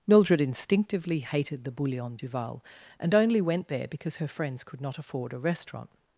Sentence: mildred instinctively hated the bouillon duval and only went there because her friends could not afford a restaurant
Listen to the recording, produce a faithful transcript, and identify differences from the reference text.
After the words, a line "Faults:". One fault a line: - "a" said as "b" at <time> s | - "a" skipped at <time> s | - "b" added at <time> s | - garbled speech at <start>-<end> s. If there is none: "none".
mildred instinctively hated the bouillon duval and only went there because her friends could not afford a restaurant
Faults:
none